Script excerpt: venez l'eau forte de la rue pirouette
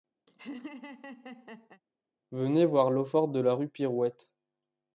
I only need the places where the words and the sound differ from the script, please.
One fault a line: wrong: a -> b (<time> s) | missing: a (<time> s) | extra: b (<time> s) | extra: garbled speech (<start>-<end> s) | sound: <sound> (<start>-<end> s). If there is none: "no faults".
sound: laugh (0.3-1.8 s)
extra: voir (2.6 s)